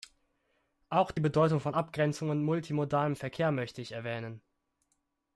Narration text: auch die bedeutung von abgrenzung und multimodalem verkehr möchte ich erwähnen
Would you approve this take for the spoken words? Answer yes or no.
yes